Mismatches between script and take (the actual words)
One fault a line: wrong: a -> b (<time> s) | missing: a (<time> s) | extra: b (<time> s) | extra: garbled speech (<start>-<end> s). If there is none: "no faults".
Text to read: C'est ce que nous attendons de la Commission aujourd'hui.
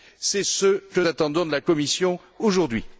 missing: nous (1.0 s)